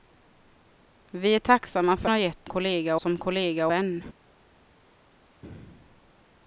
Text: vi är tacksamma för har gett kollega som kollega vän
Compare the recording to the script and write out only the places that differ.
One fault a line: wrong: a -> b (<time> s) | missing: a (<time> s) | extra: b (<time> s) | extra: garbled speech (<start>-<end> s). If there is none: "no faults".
no faults